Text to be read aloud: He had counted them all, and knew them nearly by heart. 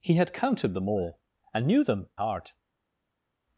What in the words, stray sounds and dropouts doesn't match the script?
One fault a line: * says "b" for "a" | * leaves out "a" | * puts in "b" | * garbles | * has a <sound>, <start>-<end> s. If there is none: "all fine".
* leaves out "nearly by"